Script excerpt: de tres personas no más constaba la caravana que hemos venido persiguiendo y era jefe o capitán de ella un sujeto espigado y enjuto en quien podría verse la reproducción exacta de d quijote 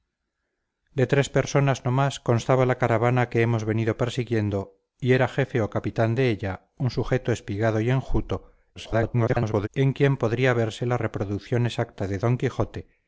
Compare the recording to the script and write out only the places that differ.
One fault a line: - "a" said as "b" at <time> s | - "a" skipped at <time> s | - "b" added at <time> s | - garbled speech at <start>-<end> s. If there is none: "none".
- garbled speech at 8.8-9.7 s